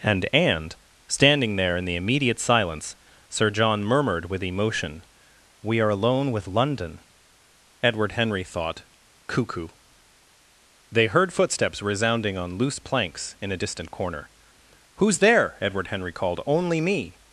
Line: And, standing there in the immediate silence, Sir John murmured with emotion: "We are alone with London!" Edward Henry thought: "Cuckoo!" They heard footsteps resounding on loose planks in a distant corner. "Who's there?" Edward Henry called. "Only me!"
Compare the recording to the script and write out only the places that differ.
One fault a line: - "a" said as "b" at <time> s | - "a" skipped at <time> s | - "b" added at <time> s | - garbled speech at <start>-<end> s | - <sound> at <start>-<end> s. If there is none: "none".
- "and" added at 0.3 s